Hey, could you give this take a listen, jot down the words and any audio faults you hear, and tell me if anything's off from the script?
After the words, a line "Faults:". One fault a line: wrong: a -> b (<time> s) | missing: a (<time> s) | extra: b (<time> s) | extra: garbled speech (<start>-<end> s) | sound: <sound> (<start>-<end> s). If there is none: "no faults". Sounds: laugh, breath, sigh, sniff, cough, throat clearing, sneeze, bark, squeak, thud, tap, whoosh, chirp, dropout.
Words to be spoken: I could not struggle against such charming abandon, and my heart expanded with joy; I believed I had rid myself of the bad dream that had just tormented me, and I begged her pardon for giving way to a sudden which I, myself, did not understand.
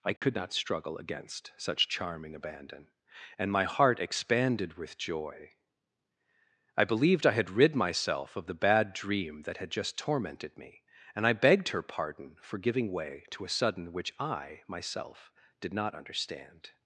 I could not struggle against such charming abandon, and my heart expanded with joy; I believed I had rid myself of the bad dream that had just tormented me, and I begged her pardon for giving way to a sudden which I, myself, did not understand.
Faults:
sound: dropout (0.2-0.2 s)